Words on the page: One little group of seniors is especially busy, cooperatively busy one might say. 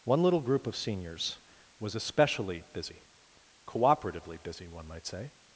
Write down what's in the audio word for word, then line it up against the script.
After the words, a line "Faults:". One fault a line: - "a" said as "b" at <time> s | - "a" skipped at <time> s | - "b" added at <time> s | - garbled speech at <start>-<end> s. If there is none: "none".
One little group of seniors was especially busy, cooperatively busy one might say.
Faults:
- "is" said as "was" at 1.8 s